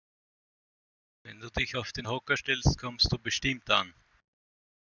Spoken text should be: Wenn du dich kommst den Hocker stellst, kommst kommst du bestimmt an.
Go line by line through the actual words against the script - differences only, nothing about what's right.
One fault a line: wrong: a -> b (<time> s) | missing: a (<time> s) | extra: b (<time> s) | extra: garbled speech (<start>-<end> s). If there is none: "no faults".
wrong: kommst -> auf (1.8 s)
missing: kommst (3.1 s)